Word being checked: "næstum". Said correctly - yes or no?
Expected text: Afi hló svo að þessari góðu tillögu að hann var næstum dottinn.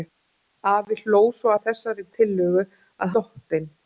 no